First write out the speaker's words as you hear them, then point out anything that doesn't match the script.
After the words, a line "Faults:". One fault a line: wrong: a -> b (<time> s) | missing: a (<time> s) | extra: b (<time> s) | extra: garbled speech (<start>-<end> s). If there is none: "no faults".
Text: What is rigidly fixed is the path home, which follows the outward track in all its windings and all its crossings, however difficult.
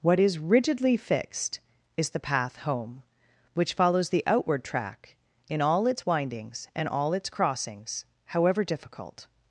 What is rigidly fixed is the path home, which follows the outward track in all its windings and all its crossings, however difficult.
Faults:
no faults